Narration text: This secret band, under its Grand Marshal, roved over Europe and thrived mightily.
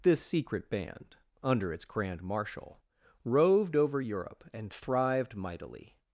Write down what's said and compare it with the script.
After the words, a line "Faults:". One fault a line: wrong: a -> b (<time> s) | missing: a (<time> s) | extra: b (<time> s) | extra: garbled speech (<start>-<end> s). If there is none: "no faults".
This secret band, under its Grand Marshal, roved over Europe and thrived mightily.
Faults:
no faults